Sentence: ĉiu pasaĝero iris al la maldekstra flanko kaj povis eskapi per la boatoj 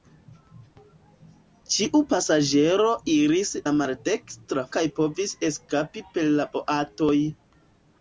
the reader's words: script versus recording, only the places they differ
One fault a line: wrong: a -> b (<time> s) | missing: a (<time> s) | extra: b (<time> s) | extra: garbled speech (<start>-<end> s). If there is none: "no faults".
missing: al (3.5 s)
missing: flanko (4.7 s)